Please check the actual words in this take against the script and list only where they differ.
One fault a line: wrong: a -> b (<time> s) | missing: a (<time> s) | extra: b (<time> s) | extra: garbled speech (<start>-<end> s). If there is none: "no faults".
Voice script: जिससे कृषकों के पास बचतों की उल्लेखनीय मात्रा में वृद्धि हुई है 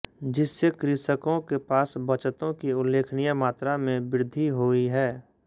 no faults